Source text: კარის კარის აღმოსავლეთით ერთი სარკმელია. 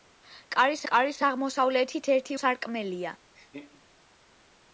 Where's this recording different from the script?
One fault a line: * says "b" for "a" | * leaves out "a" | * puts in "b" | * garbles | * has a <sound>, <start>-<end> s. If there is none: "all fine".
* has a laugh, 3.3-3.8 s